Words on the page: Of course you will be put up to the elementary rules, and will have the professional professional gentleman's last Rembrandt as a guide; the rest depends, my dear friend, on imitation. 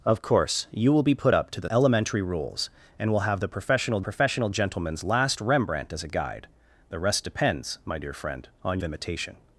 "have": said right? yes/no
yes